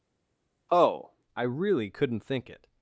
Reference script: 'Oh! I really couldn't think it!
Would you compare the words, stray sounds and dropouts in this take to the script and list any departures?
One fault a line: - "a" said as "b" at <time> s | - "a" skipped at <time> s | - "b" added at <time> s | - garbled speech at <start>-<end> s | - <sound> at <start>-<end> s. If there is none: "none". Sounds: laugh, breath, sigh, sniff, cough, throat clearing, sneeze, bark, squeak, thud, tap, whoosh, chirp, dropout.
none